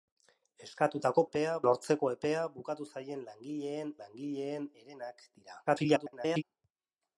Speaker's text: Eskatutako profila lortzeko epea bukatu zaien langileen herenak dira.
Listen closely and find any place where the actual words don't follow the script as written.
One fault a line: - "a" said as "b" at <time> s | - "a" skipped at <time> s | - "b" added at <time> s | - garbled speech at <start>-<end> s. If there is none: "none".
- "profila" said as "epea" at 1.3 s
- "langileen" added at 4.0 s
- garbled speech at 5.7-6.4 s